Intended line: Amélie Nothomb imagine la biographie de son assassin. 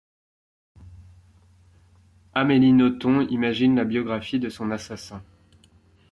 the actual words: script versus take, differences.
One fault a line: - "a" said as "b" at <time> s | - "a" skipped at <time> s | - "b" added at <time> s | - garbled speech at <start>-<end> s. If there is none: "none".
none